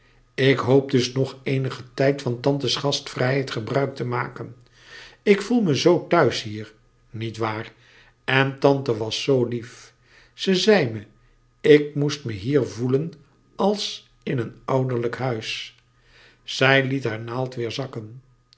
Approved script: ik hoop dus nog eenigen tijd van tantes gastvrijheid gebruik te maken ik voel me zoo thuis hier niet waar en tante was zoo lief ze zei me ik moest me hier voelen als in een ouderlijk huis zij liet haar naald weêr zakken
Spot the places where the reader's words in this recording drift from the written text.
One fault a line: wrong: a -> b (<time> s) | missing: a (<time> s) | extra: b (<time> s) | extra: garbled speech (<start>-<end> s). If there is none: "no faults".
no faults